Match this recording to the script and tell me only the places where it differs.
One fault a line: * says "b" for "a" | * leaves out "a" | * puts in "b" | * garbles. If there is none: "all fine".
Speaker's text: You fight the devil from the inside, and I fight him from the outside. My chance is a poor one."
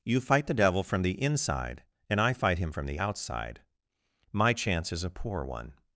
all fine